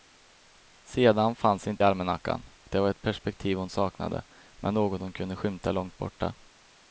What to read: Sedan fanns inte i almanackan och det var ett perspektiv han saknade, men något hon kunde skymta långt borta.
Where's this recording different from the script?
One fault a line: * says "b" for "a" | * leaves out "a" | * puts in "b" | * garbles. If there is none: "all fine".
* says "hon" for "han"